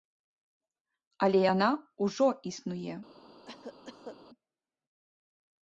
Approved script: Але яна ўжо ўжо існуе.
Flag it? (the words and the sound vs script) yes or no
yes